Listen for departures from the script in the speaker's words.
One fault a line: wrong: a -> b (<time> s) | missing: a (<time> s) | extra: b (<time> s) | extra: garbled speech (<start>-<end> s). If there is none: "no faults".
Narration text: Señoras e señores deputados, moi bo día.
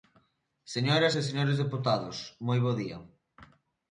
no faults